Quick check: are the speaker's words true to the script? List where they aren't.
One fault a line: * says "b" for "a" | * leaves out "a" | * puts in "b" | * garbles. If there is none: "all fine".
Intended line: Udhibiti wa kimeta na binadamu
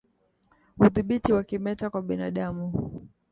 * says "kwa" for "na"